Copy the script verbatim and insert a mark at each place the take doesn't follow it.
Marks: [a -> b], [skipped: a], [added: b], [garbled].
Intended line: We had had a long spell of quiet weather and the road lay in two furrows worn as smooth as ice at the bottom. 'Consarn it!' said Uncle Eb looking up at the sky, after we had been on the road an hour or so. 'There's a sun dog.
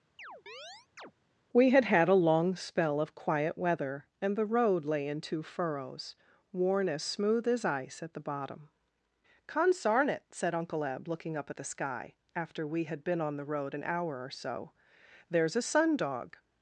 We had had a long spell of quiet weather and the road lay in two furrows worn as smooth as ice at the bottom. 'Consarn it!' said Uncle Eb looking up at the sky, after we had been on the road an hour or so. 'There's a sun dog.